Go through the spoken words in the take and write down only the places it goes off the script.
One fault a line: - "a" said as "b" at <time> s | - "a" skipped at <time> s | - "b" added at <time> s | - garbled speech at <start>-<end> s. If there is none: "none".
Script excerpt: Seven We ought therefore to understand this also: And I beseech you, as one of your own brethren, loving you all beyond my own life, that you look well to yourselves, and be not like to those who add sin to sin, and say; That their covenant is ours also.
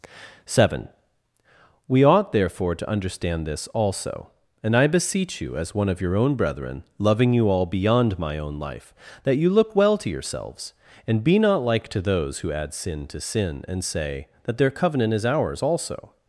none